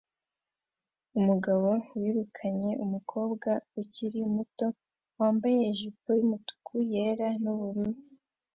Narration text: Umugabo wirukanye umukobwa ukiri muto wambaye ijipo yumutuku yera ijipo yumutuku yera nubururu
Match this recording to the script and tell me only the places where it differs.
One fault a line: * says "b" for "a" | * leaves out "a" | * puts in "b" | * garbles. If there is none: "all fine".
* leaves out "ijipo yumutuku yera"